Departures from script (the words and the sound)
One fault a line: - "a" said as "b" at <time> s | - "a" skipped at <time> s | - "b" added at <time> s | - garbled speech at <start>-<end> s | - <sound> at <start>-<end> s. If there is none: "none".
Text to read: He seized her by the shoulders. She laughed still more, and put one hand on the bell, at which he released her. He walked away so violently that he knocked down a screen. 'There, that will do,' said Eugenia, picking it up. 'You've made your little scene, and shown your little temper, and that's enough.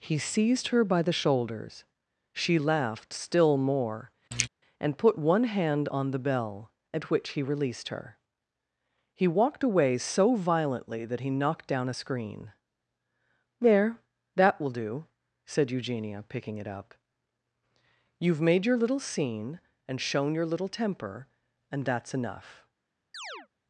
- throat clearing at 4.3-4.5 s
- chirp at 23.1-23.5 s